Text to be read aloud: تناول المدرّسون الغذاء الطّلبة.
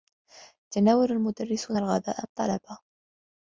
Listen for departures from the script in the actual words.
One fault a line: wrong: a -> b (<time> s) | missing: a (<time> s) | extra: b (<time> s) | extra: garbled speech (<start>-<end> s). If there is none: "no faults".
no faults